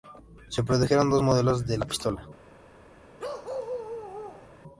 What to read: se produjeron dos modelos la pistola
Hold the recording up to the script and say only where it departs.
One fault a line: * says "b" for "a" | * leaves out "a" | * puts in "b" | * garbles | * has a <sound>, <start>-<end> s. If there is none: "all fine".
* puts in "de"
* has a bark, 3.2-4.5 s